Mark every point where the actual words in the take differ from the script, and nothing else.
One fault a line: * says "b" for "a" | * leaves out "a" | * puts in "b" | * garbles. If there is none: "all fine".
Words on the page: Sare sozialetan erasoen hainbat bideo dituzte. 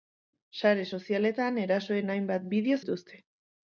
all fine